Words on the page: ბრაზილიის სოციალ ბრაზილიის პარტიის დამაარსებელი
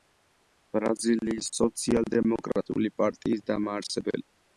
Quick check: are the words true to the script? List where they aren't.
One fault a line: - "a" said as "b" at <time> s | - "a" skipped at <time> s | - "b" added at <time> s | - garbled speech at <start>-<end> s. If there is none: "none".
- "ბრაზილიის" said as "დემოკრატიული" at 2.1 s